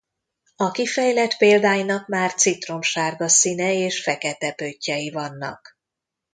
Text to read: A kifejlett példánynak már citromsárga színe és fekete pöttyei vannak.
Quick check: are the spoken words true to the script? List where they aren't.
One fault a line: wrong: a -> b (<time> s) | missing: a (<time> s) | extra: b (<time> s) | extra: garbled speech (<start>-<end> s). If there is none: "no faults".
no faults